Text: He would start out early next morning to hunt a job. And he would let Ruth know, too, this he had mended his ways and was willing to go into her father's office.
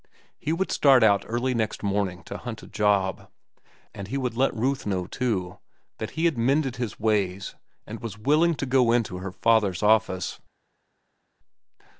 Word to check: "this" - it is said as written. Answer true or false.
false